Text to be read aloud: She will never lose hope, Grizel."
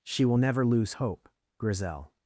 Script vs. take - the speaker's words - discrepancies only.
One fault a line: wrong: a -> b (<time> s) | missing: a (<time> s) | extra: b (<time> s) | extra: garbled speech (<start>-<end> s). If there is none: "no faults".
no faults